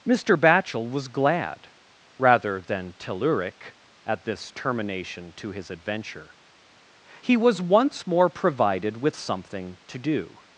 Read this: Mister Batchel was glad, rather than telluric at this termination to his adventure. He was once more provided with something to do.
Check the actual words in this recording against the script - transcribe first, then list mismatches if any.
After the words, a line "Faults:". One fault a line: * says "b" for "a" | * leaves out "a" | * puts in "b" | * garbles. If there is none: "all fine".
Mister Batchel was glad, rather than telluric at this termination to his adventure. He was once more provided with something to do.
Faults:
all fine